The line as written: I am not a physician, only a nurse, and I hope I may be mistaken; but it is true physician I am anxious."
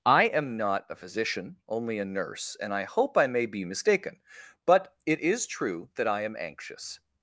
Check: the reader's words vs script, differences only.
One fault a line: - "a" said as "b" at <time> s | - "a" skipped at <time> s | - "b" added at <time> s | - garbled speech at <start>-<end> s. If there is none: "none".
- "physician" said as "that" at 5.9 s